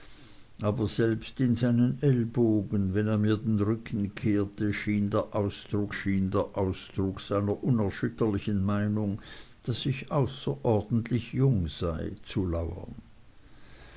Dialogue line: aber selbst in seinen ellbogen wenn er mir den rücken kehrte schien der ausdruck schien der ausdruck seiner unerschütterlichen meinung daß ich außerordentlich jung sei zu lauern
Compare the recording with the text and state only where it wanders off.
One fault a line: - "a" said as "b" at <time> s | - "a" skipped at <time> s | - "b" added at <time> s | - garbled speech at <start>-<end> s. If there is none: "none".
none